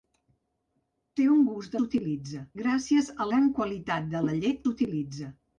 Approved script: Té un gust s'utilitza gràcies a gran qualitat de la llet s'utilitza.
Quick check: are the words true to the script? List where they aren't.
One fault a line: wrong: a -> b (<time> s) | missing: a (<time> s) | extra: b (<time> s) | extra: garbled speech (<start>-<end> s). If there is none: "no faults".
no faults